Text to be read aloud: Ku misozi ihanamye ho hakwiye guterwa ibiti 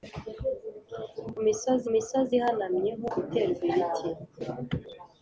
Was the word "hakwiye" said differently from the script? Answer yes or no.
yes